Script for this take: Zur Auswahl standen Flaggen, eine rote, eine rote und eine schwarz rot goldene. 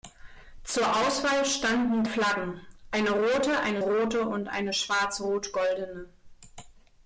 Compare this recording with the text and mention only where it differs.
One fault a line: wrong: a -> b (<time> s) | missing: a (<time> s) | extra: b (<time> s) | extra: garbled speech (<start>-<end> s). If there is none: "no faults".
no faults